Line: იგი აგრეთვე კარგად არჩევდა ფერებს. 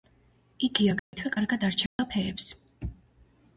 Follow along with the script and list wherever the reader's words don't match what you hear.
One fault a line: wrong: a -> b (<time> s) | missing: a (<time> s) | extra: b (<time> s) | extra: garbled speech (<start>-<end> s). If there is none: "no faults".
no faults